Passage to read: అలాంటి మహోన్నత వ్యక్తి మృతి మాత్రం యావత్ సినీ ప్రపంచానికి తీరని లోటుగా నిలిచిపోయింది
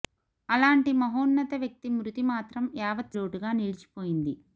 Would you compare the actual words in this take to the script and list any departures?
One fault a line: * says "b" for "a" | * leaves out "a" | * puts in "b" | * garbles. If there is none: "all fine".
* leaves out "సినీ ప్రపంచానికి తీరని"